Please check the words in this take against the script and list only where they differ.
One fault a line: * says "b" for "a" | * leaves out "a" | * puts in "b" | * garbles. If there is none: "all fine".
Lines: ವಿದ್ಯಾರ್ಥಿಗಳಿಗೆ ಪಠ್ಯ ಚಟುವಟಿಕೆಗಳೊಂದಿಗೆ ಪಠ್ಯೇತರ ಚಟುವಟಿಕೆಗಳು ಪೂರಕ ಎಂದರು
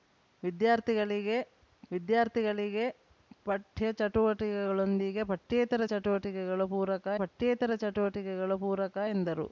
* puts in "ವಿದ್ಯಾರ್ಥಿಗಳಿಗೆ"
* puts in "ಪಠ್ಯೇತರ ಚಟುವಟಿಕೆಗಳು ಪೂರಕ"